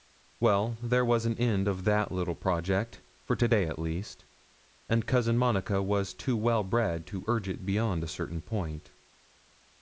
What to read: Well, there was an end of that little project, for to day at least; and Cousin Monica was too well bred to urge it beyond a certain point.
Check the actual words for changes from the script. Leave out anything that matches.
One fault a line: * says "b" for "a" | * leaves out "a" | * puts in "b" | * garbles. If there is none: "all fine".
all fine